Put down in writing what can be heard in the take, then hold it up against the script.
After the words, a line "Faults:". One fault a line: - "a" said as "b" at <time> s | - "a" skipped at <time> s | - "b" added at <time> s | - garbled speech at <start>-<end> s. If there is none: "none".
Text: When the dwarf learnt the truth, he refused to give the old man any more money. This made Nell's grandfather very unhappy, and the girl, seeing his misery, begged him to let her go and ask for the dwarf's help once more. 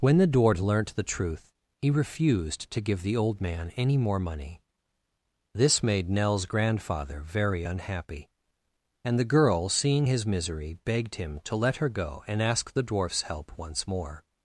When the dwarf learnt the truth, he refused to give the old man any more money. This made Nell's grandfather very unhappy, and the girl, seeing his misery, begged him to let her go and ask the dwarf's help once more.
Faults:
- "for" skipped at 12.7 s